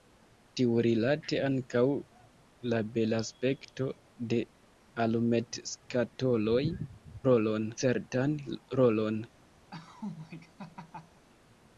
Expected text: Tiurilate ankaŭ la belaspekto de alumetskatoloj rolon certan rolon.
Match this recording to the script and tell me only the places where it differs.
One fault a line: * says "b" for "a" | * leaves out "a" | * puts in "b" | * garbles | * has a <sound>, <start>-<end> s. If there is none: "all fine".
* has a laugh, 9.7-11.3 s